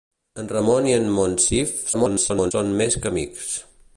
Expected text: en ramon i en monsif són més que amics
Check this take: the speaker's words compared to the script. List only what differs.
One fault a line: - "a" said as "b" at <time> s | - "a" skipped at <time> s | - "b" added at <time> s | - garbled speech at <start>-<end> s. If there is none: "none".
- garbled speech at 1.9-2.5 s